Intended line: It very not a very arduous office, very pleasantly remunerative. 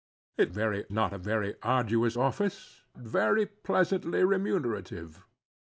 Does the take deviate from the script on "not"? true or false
false